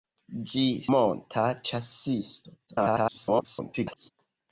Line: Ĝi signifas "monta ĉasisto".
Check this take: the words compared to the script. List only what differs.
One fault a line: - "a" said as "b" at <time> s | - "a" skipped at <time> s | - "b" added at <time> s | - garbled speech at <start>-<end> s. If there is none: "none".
- "signifas" skipped at 0.6 s
- garbled speech at 2.7-4.1 s